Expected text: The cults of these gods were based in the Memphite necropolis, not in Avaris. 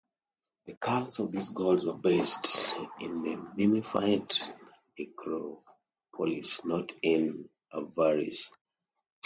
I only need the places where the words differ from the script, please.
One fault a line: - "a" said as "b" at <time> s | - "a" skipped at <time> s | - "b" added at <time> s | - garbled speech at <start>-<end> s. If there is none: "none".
none